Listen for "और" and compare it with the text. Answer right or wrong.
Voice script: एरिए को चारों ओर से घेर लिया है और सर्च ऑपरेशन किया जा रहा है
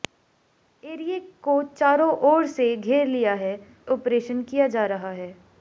wrong